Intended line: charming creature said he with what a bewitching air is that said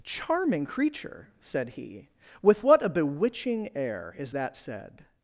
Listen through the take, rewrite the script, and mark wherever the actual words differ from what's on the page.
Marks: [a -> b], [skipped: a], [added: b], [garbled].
charming creature said he with what a bewitching air is that said